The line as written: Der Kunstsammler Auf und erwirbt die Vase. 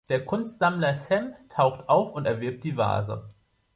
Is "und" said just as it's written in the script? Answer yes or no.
yes